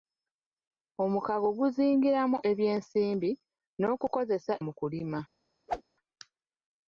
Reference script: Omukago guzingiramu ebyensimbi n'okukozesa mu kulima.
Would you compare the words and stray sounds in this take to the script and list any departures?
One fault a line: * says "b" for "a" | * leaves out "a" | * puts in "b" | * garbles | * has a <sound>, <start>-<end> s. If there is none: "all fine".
* has a whoosh, 5.7-5.8 s